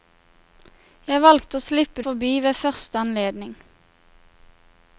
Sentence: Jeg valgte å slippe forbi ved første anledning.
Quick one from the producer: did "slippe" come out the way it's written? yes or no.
yes